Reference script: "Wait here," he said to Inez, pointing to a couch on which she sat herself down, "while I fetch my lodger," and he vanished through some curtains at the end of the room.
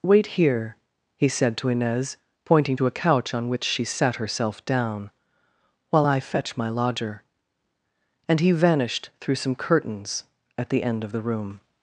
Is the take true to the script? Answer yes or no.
yes